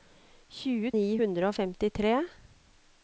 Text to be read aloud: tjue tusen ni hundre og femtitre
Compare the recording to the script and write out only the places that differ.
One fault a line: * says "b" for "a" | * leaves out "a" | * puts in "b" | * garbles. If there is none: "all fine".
* leaves out "tusen"